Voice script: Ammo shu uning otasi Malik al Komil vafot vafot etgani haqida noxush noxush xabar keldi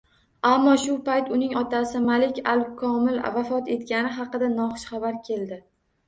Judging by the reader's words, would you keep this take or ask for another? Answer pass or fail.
fail